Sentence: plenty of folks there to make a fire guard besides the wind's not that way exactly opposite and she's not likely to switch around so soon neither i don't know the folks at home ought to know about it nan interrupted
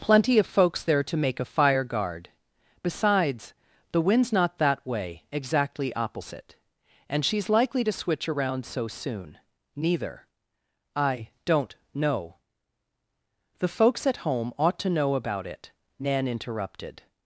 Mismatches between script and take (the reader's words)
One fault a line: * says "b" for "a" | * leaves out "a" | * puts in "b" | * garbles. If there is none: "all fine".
* leaves out "not"